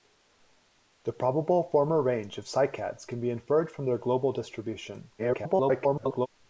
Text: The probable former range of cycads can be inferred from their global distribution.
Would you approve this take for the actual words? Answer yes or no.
no